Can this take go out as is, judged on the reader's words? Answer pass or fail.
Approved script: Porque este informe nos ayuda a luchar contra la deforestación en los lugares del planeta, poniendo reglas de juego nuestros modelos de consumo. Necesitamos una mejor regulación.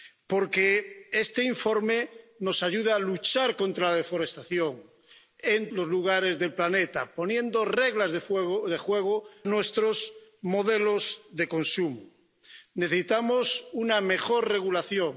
pass